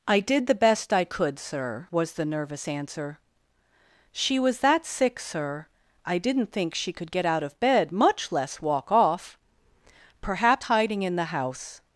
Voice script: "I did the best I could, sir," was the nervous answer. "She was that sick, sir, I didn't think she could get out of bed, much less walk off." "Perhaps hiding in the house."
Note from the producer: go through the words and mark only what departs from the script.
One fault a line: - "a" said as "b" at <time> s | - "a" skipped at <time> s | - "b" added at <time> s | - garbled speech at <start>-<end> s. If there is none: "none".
none